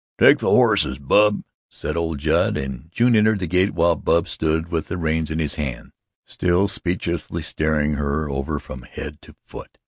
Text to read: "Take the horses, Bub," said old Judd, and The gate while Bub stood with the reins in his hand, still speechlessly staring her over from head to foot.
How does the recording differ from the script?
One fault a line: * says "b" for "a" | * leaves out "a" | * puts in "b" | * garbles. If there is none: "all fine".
* puts in "June entered"